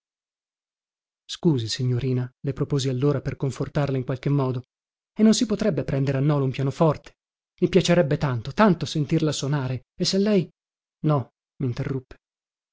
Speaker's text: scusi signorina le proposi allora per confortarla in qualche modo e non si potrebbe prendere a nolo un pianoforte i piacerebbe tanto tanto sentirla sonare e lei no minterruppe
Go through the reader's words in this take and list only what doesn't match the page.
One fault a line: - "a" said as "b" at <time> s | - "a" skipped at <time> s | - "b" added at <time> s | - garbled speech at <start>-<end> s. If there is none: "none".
- "se" added at 10.1 s